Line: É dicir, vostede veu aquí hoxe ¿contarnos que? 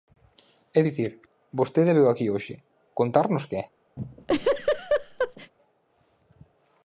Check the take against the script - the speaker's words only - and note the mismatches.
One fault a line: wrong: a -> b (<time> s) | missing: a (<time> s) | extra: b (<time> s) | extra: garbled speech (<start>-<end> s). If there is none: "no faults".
no faults